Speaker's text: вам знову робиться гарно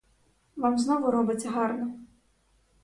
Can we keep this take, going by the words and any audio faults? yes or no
yes